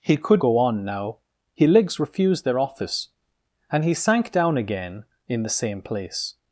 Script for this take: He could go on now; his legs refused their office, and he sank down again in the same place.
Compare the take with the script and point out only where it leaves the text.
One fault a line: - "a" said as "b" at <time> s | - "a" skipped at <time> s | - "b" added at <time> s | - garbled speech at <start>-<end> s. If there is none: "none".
none